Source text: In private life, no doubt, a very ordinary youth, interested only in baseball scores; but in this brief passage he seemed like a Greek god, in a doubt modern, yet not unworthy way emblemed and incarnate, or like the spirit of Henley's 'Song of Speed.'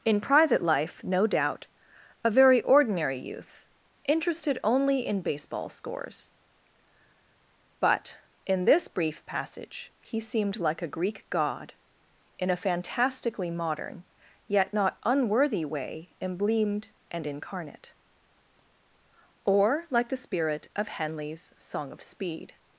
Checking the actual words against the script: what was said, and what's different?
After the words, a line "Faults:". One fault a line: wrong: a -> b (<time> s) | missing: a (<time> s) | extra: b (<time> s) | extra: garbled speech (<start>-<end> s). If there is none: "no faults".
In private life, no doubt, a very ordinary youth, interested only in baseball scores; but in this brief passage he seemed like a Greek god, in a fantastically modern, yet not unworthy way emblemed and incarnate, or like the spirit of Henley's 'Song of Speed.'
Faults:
wrong: doubt -> fantastically (12.6 s)